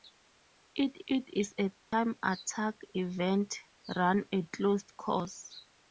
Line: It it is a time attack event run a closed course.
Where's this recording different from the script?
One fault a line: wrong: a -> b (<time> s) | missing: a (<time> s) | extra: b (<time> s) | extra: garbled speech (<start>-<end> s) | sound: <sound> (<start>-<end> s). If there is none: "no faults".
sound: dropout (1.8-1.9 s)